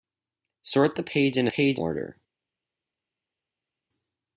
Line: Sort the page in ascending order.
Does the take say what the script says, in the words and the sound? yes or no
no